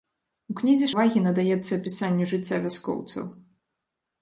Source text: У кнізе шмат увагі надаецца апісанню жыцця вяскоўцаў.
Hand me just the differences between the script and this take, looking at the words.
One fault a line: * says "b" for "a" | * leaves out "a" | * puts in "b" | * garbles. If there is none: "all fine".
* leaves out "шмат"